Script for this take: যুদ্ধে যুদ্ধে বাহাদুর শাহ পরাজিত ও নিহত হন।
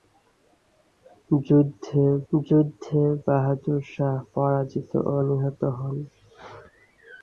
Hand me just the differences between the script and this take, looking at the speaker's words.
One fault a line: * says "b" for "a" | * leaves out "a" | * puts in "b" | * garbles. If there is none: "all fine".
all fine